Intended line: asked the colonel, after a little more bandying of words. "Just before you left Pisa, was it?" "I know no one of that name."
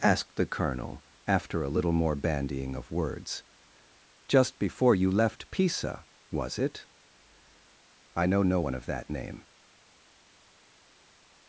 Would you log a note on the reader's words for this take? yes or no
no